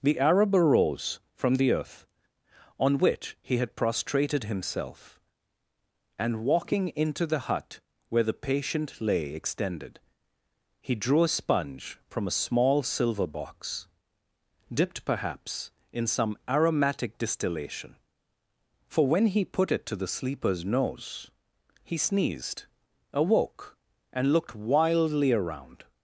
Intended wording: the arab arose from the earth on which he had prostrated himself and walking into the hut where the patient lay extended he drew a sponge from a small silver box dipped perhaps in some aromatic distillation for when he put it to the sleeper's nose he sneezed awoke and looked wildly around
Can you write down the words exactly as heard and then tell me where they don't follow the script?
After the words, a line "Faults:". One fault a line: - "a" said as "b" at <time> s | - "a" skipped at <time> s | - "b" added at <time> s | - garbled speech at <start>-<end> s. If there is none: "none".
the arab arose from the earth on which he had prostrated himself and walking into the hut where the patient lay extended he drew a sponge from a small silver box dipped perhaps in some aromatic distillation for when he put it to the sleeper's nose he sneezed awoke and looked wildly around
Faults:
none